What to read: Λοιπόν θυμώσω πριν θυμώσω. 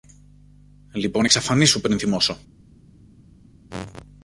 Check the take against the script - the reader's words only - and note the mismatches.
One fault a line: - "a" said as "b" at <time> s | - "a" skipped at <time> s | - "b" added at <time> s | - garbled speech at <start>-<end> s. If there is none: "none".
- "θυμώσω" said as "εξαφανίσου" at 1.2 s